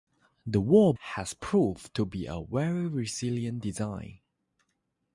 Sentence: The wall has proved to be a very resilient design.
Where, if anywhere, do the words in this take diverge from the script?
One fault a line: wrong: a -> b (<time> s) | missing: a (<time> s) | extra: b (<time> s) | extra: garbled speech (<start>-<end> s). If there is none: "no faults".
no faults